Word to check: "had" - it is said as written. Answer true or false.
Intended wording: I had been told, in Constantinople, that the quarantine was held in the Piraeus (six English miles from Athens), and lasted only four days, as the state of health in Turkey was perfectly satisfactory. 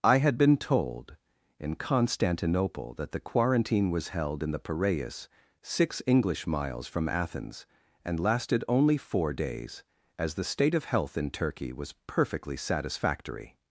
true